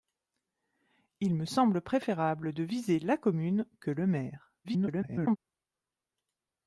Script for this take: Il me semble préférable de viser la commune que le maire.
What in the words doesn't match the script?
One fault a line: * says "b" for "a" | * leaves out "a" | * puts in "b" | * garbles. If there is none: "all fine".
* garbles